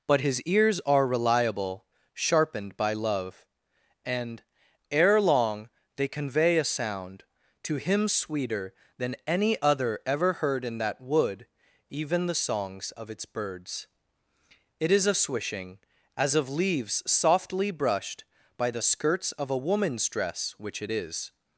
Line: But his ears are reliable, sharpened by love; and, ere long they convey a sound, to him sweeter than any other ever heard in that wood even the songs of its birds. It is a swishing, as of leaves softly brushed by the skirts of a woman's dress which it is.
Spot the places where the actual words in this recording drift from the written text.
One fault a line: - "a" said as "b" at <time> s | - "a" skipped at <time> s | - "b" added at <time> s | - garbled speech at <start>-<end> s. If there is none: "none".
none